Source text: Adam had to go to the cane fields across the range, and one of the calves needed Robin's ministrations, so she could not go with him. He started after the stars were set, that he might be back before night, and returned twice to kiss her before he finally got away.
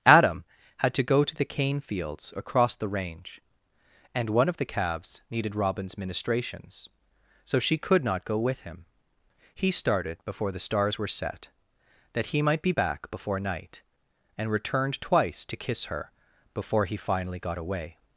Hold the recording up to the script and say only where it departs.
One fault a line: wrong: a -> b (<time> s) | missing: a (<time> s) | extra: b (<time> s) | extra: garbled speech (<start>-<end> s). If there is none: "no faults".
wrong: after -> before (10.2 s)